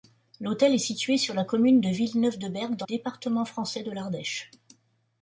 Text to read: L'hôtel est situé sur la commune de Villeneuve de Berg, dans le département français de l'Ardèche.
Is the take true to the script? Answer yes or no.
no